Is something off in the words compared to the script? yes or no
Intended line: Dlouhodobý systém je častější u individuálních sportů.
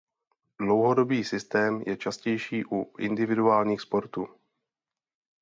no